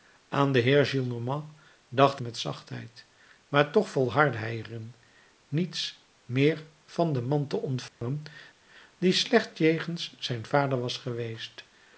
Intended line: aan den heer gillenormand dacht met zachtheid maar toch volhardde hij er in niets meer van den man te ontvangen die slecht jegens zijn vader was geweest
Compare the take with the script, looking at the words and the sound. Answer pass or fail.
fail